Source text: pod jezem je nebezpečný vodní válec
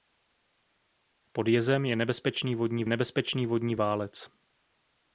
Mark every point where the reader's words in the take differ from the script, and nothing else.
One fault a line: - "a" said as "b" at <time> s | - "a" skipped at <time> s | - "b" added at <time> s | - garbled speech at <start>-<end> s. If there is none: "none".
- "nebezpečný vodní" added at 2.9 s